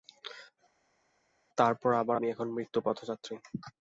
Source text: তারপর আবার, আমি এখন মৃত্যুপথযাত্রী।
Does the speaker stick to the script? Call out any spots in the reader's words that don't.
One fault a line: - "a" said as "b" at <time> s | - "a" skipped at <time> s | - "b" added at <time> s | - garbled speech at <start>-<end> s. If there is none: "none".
none